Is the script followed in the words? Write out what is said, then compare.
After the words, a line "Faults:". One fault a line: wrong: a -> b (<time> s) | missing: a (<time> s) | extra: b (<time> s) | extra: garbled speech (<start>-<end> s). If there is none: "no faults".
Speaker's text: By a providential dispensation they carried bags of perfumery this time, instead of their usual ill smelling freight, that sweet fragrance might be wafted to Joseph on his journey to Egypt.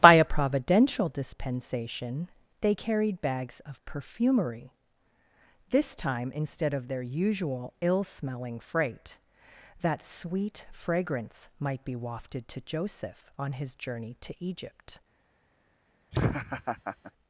By a providential dispensation they carried bags of perfumery this time, instead of their usual ill smelling freight, that sweet fragrance might be wafted to Joseph on his journey to Egypt.
Faults:
no faults